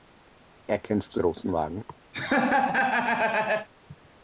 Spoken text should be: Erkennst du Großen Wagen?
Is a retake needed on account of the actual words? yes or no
no